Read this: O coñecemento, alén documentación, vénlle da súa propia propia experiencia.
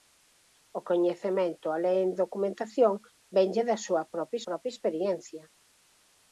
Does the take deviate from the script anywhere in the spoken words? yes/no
no